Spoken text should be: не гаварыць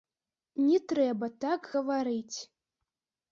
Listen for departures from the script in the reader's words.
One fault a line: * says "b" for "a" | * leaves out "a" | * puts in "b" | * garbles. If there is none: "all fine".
* puts in "трэба так"